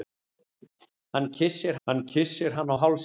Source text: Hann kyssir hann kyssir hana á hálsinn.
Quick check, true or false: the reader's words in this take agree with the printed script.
true